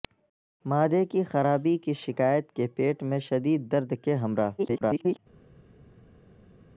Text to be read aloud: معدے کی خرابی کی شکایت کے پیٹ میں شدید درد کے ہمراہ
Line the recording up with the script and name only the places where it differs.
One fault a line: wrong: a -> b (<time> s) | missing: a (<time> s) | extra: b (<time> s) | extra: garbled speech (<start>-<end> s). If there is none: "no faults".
extra: garbled speech (4.6-5.2 s)